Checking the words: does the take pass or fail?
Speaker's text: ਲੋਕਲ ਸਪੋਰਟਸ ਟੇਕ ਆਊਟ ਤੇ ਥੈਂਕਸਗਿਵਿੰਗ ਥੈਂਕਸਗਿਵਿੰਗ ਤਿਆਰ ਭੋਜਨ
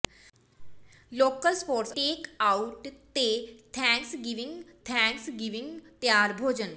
pass